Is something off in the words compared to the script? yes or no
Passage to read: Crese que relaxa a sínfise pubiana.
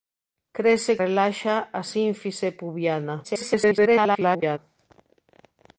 yes